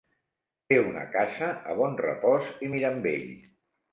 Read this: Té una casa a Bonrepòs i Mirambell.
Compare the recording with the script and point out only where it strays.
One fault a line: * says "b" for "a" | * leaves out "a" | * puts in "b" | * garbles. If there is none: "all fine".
all fine